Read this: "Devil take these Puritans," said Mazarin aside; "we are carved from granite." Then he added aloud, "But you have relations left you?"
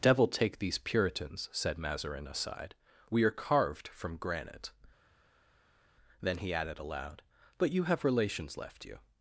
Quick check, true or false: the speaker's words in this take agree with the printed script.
true